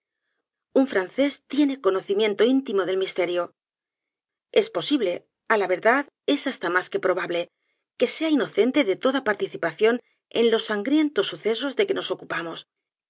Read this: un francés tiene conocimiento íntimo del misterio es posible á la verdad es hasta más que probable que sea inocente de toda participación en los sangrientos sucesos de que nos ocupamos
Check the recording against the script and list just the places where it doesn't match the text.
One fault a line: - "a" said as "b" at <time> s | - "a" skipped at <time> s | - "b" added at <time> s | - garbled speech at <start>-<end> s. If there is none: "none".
none